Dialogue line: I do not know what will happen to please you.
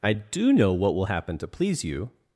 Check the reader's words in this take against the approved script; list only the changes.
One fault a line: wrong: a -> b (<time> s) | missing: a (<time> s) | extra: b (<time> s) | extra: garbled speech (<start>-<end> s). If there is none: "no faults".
missing: not (0.5 s)